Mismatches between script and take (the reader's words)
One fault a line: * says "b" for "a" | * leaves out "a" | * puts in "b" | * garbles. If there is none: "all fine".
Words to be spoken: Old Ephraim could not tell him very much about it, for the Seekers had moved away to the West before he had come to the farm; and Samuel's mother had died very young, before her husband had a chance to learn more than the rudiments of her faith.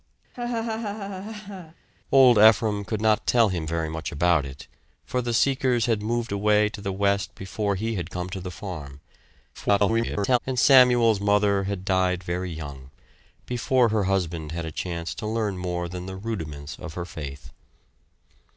* garbles